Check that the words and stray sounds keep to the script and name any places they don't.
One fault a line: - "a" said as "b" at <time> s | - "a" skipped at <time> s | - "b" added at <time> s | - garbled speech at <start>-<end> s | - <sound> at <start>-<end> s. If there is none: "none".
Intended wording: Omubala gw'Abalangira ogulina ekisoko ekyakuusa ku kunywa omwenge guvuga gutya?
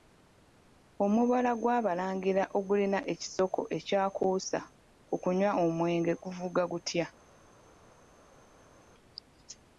none